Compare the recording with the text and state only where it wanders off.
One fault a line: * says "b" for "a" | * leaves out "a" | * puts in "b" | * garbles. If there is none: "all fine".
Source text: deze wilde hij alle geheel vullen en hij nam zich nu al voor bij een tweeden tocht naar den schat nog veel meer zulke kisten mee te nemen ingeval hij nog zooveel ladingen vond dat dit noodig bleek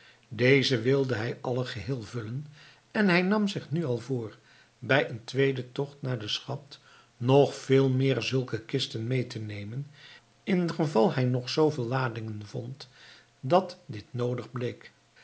all fine